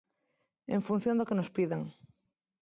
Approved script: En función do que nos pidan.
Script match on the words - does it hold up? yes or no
yes